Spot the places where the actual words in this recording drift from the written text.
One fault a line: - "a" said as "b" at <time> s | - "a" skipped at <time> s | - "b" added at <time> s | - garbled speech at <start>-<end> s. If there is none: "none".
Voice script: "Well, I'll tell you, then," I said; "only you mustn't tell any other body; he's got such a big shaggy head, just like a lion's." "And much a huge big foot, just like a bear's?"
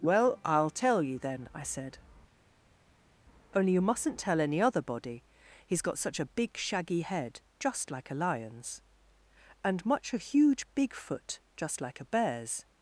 none